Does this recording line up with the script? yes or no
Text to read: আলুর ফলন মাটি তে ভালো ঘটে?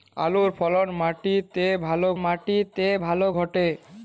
no